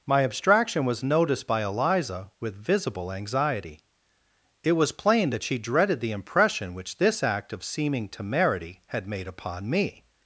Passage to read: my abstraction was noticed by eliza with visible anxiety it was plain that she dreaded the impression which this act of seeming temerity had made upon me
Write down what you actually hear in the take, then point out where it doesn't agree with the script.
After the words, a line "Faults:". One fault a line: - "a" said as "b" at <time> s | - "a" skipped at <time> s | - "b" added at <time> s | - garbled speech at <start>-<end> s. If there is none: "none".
my abstraction was noticed by eliza with visible anxiety it was plain that she dreaded the impression which this act of seeming temerity had made upon me
Faults:
none